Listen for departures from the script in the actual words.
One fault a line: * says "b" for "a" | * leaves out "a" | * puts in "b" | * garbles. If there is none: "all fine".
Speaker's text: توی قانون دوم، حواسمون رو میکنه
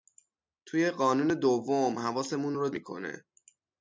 all fine